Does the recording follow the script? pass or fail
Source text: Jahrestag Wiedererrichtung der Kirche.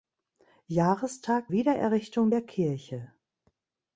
pass